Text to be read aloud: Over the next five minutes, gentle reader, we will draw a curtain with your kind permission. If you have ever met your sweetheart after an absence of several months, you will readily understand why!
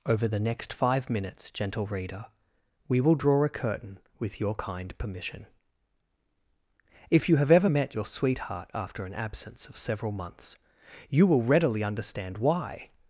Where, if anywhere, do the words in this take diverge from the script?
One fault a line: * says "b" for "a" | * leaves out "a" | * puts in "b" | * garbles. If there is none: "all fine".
all fine